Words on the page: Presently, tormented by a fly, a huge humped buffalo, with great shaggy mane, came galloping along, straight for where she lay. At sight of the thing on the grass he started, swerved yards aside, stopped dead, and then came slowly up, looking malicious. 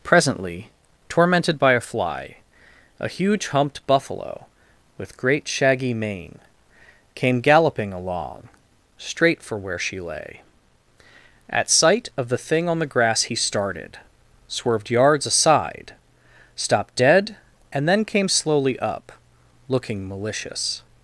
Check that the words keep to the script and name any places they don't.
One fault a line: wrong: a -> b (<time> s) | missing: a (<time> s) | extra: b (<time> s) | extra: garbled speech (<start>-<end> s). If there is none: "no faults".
no faults